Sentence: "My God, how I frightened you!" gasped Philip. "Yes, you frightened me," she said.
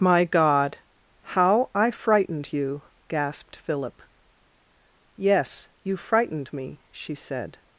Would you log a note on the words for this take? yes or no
no